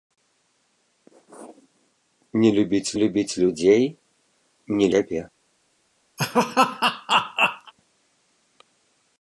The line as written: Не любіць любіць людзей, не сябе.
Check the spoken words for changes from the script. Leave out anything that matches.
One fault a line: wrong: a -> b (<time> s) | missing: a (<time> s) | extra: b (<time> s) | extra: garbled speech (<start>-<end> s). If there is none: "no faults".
no faults